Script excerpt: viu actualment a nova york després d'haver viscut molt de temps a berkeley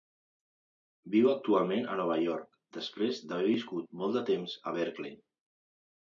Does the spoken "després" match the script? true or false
true